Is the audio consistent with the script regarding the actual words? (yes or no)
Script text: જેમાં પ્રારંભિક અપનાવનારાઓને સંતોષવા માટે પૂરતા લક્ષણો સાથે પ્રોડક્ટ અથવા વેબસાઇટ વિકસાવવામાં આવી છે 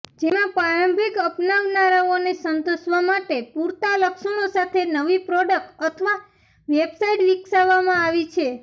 no